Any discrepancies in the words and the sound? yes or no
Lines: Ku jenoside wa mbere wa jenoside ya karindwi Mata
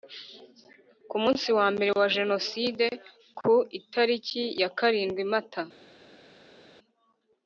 yes